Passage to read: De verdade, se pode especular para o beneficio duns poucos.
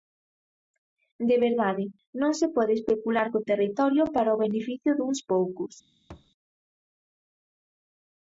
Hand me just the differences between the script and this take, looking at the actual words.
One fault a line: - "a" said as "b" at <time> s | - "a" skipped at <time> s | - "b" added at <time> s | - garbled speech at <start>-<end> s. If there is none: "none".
- "non" added at 2.2 s
- "co territorio" added at 3.3 s